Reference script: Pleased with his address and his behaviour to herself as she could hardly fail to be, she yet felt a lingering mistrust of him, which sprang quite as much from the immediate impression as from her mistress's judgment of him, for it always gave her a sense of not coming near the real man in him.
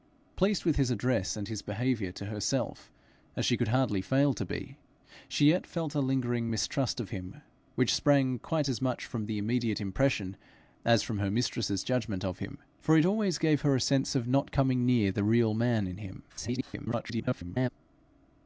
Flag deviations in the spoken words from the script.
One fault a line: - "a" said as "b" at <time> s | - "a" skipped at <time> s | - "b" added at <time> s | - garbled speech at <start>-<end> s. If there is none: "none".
- garbled speech at 16.3-17.7 s